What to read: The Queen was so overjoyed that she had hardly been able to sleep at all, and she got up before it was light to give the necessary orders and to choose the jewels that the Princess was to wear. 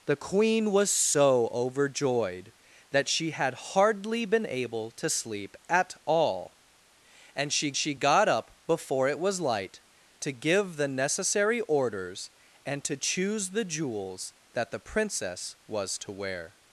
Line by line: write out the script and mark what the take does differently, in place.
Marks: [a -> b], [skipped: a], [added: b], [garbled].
The Queen was so overjoyed that she had hardly been able to sleep at all, and she [added: she] got up before it was light to give the necessary orders and to choose the jewels that the Princess was to wear.